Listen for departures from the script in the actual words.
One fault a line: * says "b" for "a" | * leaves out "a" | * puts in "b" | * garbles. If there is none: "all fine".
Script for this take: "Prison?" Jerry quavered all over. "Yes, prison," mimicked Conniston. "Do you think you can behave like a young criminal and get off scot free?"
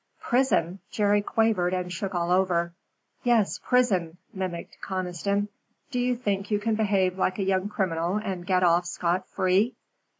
* puts in "and shook"